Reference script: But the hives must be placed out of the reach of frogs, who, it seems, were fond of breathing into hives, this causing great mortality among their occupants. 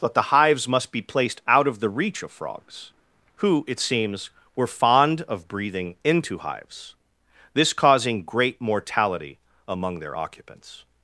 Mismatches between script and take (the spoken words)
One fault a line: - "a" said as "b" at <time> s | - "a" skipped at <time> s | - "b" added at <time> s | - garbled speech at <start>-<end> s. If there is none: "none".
none